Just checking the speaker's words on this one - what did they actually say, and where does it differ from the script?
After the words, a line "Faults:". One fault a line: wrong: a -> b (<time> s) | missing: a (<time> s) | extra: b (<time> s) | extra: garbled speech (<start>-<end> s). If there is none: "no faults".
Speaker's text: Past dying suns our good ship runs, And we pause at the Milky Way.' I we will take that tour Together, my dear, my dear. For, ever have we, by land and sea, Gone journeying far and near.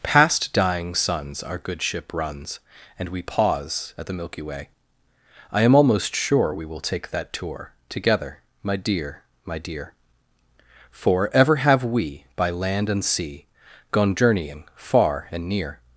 Past dying suns our good ship runs, And we pause at the Milky Way.' I am almost sure we will take that tour Together, my dear, my dear. For, ever have we, by land and sea, Gone journeying far and near.
Faults:
extra: am almost sure (5.6 s)